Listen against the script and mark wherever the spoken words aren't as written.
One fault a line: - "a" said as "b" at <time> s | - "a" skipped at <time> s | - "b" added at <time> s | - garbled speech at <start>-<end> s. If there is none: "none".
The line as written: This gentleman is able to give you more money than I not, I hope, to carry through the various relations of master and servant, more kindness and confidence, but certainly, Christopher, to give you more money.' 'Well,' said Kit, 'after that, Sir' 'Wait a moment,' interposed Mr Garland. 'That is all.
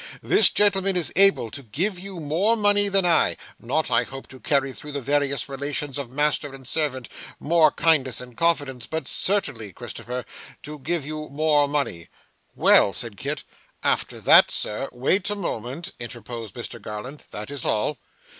none